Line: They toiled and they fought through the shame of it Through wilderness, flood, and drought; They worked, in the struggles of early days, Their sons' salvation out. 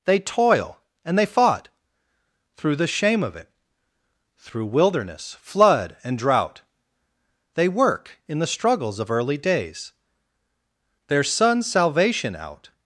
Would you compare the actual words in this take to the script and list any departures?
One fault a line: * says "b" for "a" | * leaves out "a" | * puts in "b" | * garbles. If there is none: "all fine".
* says "toil" for "toiled"
* says "work" for "worked"